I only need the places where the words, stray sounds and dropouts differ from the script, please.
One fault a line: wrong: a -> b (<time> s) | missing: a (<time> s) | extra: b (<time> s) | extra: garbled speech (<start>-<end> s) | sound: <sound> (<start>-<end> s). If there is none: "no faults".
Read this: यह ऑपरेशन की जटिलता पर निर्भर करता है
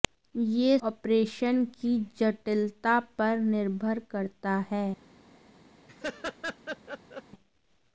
sound: laugh (5.9-7.2 s)